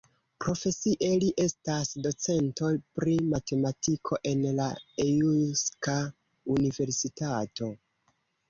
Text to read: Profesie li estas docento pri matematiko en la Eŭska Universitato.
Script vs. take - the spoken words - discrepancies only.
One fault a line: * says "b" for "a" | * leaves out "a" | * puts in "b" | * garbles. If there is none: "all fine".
all fine